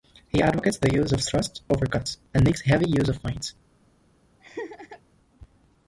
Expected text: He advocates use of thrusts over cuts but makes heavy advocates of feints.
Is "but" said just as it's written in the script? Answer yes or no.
no